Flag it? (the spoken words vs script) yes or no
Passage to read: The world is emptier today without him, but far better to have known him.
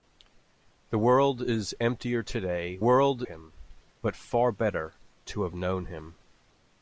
yes